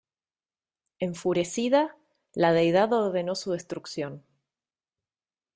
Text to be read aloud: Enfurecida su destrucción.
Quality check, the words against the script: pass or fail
fail